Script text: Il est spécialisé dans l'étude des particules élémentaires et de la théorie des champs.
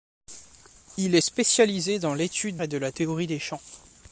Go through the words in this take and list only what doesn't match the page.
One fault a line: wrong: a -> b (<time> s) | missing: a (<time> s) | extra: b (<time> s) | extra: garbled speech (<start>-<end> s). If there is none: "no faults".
missing: des particules élémentaires (2.6 s)